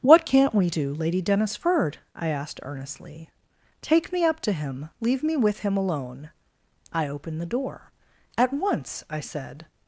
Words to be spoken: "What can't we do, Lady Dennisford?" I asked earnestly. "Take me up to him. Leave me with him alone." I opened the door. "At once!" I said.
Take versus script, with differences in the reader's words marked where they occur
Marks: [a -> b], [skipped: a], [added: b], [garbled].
"What can't we do, Lady Dennisford?" I asked earnestly. "Take me up to him. Leave me with him alone." I opened the door. "At once!" I said.